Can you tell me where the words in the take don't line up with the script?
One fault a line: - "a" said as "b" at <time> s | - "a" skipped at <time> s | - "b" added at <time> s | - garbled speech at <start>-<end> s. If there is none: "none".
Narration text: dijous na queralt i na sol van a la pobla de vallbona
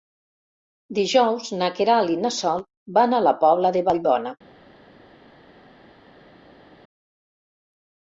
none